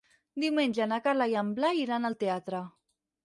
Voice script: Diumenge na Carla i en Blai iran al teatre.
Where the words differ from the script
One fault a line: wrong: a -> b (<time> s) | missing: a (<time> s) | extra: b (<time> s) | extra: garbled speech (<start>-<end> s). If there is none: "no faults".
no faults